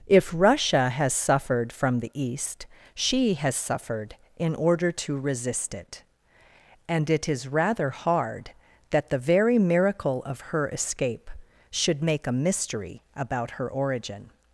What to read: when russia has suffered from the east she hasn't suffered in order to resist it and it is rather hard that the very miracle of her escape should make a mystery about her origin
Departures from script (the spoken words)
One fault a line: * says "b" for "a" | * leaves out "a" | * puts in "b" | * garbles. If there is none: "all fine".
* says "if" for "when"
* says "has" for "hasn't"